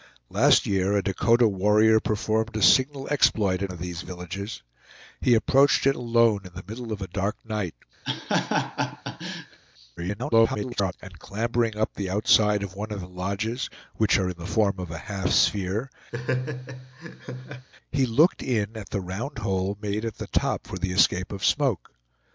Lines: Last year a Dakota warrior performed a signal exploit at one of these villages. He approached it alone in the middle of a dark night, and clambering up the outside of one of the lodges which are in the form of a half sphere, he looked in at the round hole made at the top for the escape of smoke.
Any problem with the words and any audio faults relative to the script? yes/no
yes